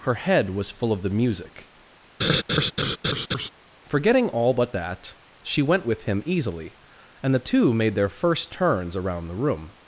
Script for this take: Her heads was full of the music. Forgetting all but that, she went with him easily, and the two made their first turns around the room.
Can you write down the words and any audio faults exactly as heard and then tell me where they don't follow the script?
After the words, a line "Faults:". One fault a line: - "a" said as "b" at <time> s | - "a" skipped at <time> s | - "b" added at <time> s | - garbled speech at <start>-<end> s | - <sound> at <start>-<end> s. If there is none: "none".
Her head was full of the music. Forgetting all but that, she went with him easily, and the two made their first turns around the room.
Faults:
- "heads" said as "head" at 0.1 s
- laugh at 2.2-3.5 s